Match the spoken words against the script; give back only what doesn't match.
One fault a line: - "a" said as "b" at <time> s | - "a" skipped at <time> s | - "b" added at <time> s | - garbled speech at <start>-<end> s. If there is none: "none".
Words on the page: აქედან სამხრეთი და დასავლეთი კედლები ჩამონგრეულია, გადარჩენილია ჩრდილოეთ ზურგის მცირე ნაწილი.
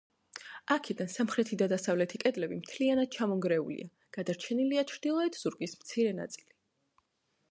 - "მთლიანად" added at 2.6 s